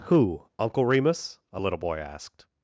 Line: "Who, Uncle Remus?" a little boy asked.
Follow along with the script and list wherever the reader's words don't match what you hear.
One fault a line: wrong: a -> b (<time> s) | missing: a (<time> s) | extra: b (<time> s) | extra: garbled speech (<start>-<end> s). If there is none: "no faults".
no faults